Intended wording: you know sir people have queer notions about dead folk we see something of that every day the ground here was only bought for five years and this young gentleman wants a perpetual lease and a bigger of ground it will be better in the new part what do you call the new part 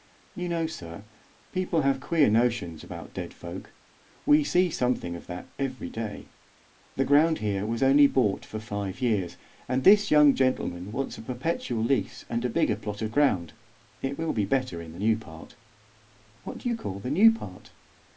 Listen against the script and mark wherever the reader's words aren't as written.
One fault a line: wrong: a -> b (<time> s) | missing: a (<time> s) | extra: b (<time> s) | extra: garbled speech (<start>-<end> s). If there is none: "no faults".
extra: plot (12.8 s)